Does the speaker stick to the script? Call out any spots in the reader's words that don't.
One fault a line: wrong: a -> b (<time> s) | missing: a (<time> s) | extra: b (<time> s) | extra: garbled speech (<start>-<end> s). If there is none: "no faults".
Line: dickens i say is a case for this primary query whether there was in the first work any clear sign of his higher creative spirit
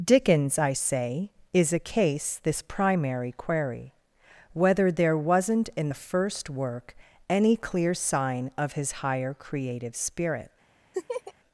missing: for (2.4 s)
wrong: was -> wasn't (5.2 s)